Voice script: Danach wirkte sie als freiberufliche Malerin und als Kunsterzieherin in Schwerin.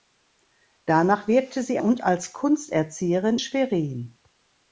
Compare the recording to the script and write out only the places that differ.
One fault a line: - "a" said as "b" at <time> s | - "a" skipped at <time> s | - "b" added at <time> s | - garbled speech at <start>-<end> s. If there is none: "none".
- "als freiberufliche Malerin" skipped at 1.8 s
- "in" skipped at 3.4 s